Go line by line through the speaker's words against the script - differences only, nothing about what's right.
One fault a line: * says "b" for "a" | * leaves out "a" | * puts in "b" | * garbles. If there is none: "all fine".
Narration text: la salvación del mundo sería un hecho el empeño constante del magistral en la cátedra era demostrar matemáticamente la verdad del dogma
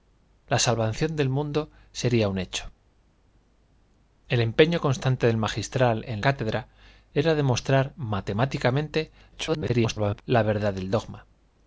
* leaves out "la"
* garbles